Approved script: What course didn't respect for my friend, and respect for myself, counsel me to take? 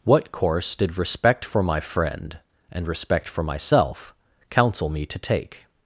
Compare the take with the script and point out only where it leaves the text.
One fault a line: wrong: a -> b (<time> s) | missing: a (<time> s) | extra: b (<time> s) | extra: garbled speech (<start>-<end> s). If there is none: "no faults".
wrong: didn't -> did (0.7 s)